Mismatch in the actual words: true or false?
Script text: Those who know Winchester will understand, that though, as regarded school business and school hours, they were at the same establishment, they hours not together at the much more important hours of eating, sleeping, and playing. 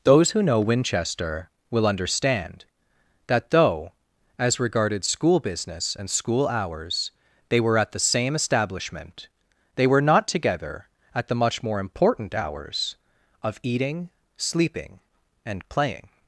true